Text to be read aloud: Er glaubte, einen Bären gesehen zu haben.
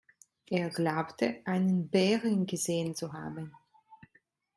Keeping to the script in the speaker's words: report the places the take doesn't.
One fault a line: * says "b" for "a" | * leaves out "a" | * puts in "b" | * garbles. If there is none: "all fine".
all fine